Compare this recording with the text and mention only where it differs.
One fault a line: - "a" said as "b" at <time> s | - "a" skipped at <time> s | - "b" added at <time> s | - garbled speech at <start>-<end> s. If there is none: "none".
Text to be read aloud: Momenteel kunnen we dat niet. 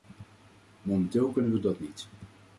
none